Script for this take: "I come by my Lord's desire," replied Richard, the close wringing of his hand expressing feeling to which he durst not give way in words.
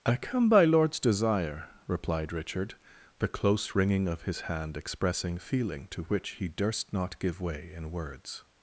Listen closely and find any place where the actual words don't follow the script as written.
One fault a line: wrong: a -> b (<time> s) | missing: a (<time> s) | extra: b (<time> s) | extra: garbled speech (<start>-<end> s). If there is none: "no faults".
missing: my (0.7 s)